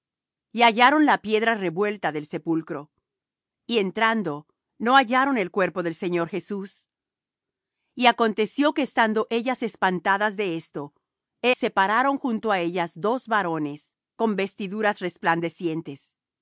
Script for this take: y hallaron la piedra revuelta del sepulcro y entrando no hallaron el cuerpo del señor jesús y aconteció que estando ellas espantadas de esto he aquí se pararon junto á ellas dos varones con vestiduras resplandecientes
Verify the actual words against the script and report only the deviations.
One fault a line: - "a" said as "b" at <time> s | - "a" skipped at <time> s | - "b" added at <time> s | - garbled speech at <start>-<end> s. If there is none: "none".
- "aquí" skipped at 11.6 s